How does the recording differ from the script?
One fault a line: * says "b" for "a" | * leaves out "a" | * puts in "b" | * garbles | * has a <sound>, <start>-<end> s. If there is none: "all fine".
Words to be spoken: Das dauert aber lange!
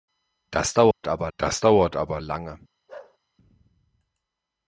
* has a dropout, 0.9-1.0 s
* puts in "das dauert aber"
* has a bark, 2.9-3.2 s